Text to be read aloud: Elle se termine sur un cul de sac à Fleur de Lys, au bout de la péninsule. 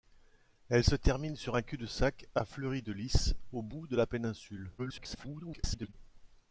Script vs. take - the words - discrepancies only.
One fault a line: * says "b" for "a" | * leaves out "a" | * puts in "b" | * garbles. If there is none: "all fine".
* garbles